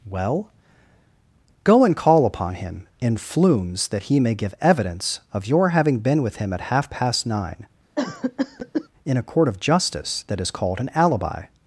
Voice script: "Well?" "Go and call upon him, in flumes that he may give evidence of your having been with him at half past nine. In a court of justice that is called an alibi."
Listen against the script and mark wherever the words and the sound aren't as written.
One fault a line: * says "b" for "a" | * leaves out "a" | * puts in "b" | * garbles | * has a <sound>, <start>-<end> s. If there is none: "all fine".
* has a cough, 8.0-8.9 s